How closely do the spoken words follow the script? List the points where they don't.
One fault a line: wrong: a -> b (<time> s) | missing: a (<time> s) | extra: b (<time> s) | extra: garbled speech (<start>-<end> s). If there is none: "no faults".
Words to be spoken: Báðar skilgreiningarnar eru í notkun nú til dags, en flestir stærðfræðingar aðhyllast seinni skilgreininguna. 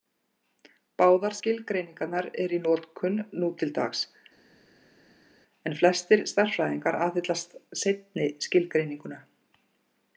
no faults